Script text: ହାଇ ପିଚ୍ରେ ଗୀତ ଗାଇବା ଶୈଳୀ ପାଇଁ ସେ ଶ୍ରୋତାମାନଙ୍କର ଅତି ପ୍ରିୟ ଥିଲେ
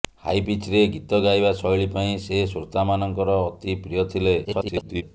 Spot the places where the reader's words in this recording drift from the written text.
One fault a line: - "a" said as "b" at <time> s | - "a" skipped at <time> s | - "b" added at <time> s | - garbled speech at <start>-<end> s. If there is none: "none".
- garbled speech at 4.4-5.0 s